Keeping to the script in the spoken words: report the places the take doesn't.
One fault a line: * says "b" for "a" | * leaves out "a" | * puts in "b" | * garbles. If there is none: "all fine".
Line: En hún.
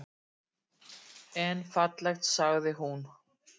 * puts in "fallegt sagði"